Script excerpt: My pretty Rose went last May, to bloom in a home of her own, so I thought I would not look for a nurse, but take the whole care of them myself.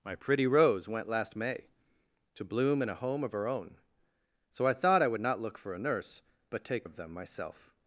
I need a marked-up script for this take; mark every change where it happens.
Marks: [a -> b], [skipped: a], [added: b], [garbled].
My pretty Rose went last May, to bloom in a home of her own, so I thought I would not look for a nurse, but take [skipped: the whole care] of them myself.